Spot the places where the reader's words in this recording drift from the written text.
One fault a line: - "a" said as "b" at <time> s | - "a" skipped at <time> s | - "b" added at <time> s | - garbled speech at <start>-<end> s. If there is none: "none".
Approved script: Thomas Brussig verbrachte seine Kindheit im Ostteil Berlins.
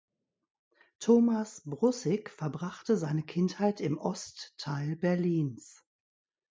none